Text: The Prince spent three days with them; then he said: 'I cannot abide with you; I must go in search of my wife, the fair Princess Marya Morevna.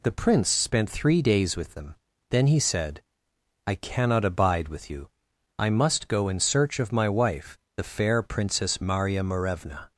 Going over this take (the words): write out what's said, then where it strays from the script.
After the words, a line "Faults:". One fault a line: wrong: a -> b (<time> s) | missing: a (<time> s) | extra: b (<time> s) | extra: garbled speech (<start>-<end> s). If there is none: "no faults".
The Prince spent three days with them; then he said: 'I cannot abide with you; I must go in search of my wife, the fair Princess Marya Morevna.
Faults:
no faults